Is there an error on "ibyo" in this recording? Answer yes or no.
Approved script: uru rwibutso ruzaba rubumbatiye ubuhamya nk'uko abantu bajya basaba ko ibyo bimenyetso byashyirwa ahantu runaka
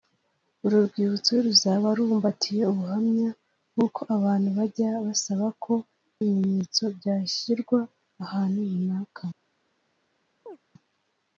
yes